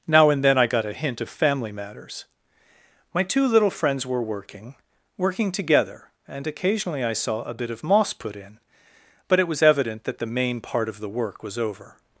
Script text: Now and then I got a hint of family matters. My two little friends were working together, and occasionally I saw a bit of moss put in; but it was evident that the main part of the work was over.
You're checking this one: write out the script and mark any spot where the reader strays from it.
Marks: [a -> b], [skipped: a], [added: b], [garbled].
Now and then I got a hint of family matters. My two little friends were working [added: working] together, and occasionally I saw a bit of moss put in; but it was evident that the main part of the work was over.